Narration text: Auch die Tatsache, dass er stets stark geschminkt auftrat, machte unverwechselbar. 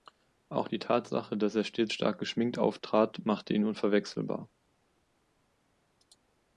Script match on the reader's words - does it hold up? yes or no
no